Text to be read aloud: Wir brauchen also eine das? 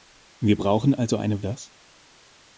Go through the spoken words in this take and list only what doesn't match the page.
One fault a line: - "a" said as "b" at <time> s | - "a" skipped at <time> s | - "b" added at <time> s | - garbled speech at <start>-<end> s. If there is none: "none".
none